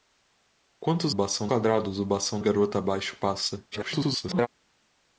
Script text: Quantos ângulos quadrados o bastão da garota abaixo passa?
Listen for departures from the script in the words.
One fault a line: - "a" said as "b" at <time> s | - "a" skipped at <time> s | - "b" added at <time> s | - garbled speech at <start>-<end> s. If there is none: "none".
- "ângulos" said as "bastão" at 1.1 s
- "da" skipped at 2.4 s
- garbled speech at 3.7-4.5 s